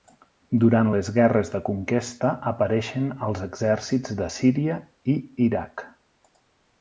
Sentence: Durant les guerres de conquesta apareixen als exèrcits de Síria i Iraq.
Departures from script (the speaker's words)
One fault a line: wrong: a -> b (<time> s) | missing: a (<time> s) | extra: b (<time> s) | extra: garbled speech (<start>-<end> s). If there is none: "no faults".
no faults